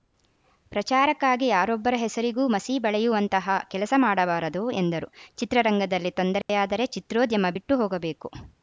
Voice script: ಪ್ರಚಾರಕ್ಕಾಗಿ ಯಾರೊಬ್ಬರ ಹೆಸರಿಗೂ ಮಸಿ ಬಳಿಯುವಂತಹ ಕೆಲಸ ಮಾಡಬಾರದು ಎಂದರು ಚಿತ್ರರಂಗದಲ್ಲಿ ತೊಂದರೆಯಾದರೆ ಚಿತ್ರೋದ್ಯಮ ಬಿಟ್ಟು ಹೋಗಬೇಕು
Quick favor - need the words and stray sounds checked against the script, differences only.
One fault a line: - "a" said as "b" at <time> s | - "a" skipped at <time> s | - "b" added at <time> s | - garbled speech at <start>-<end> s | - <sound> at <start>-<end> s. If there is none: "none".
- dropout at 6.4-6.5 s